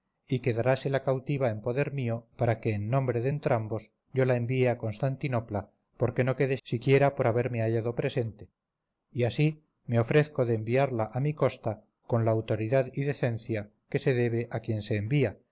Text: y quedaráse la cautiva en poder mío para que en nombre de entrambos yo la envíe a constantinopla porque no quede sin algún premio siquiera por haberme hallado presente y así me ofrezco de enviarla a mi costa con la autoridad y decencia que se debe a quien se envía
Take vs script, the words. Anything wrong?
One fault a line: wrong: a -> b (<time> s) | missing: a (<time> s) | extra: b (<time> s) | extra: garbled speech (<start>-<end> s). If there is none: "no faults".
missing: sin algún premio (6.6 s)